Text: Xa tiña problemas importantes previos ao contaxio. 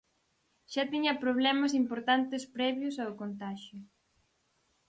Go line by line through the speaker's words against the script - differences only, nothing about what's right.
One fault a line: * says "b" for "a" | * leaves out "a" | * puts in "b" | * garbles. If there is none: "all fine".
all fine